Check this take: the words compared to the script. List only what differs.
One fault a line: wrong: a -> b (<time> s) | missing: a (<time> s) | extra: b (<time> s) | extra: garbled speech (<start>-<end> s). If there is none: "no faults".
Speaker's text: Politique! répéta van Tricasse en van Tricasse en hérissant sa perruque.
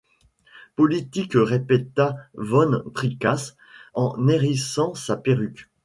missing: van Tricasse en (4.3 s)